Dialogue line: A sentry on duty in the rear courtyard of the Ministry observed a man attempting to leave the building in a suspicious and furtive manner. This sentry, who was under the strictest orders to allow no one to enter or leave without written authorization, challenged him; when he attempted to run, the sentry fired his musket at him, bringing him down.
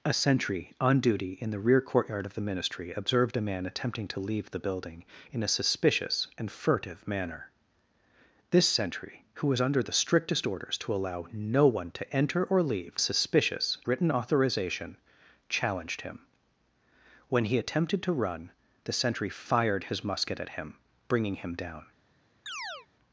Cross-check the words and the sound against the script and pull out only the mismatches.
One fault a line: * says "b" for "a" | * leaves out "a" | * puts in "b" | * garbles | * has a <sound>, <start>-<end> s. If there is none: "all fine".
* says "suspicious" for "without"
* has a chirp, 22.5-22.9 s